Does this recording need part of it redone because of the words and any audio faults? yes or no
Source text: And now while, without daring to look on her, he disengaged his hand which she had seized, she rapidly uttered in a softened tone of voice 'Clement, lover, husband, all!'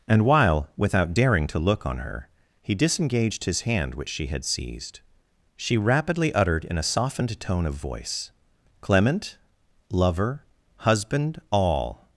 yes